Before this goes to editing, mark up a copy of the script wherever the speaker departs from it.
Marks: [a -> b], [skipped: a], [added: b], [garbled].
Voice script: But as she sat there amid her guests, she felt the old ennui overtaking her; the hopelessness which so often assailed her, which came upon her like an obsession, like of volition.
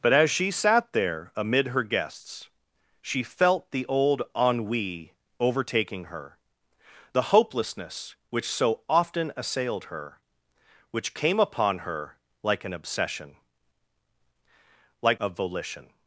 But as she sat there amid her guests, she felt the old ennui overtaking her; the hopelessness which so often assailed her, which came upon her like an obsession, like of volition.